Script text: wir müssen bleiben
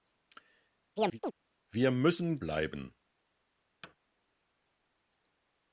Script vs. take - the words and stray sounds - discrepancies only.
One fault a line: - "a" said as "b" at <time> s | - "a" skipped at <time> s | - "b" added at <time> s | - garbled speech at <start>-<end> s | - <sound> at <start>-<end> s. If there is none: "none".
- chirp at 1.0-1.3 s
- thud at 3.8-4.0 s